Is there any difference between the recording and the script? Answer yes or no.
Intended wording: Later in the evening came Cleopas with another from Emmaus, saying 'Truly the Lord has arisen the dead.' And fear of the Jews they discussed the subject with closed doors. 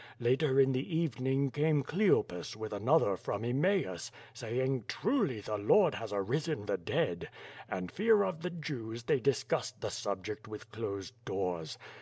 no